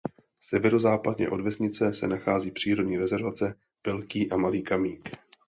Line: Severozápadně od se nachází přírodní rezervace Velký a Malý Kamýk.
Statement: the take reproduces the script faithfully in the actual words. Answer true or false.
false